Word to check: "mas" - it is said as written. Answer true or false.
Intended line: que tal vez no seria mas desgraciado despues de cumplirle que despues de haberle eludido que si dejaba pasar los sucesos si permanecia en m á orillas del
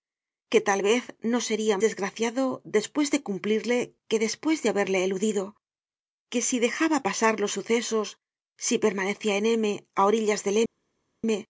false